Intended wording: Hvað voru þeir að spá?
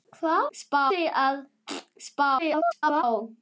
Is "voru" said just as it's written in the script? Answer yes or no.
no